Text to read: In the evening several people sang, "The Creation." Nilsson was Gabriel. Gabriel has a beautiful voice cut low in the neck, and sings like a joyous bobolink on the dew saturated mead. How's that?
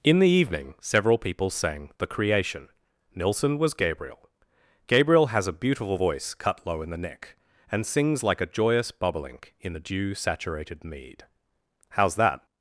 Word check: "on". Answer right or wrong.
wrong